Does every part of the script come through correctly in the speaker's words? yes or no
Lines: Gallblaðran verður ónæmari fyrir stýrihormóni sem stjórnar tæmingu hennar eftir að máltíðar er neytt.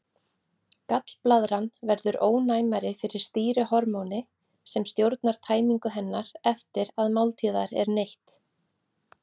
yes